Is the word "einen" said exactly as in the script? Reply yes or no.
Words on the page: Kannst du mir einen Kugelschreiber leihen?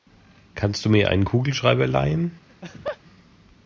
yes